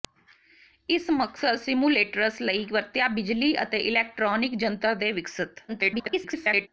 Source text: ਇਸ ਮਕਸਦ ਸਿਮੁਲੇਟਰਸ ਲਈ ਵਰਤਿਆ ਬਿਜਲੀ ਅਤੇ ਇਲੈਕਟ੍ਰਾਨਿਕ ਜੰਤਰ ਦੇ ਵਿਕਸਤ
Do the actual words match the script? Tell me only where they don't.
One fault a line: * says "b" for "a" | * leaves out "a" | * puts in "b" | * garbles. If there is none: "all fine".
* garbles